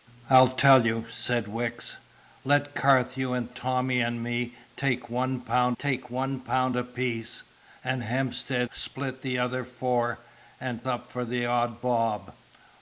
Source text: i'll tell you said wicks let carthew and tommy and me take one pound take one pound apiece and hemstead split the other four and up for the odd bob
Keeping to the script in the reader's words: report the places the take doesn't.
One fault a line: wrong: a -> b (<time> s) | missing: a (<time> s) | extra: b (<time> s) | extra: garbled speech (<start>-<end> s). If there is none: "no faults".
no faults